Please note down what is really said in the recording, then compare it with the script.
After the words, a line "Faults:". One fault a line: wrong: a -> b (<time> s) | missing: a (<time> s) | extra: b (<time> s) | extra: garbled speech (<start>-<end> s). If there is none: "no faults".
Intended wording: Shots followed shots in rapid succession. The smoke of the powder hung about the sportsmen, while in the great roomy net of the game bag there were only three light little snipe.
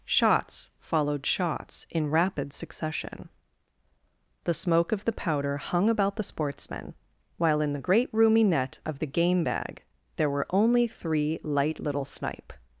Shots followed shots in rapid succession. The smoke of the powder hung about the sportsmen, while in the great roomy net of the game bag there were only three light little snipe.
Faults:
no faults